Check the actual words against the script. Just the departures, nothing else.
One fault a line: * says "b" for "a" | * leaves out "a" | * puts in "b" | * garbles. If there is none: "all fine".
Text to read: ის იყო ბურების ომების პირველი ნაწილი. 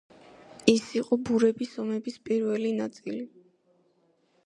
all fine